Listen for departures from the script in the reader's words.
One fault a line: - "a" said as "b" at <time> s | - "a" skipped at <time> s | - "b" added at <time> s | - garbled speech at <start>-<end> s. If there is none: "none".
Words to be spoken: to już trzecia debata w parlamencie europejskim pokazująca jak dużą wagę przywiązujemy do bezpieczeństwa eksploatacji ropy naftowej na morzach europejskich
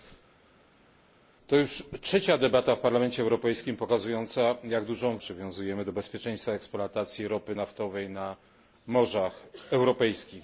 - "wagę" skipped at 5.2 s